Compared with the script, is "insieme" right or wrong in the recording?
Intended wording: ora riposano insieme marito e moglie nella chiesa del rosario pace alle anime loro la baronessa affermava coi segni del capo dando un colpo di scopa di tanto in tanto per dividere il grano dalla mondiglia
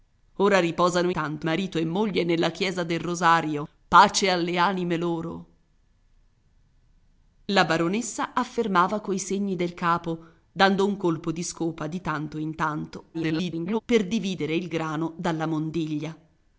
wrong